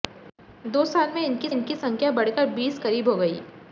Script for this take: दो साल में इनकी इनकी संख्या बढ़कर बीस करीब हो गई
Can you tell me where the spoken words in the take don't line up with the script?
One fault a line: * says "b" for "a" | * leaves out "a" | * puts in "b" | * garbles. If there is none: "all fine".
all fine